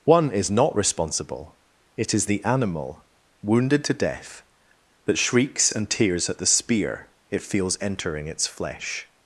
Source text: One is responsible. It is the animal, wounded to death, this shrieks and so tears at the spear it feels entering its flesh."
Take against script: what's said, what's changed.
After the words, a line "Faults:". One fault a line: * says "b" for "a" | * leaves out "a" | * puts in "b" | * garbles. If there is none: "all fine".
One is not responsible. It is the animal, wounded to death, that shrieks and tears at the spear it feels entering its flesh."
Faults:
* puts in "not"
* says "that" for "this"
* leaves out "so"